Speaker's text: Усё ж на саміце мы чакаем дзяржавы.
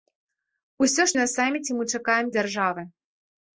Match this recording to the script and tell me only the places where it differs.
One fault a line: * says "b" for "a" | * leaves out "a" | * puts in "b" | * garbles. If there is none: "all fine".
all fine